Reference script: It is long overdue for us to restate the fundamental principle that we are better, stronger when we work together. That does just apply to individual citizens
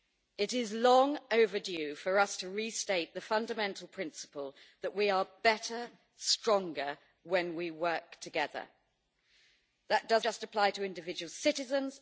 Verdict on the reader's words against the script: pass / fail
pass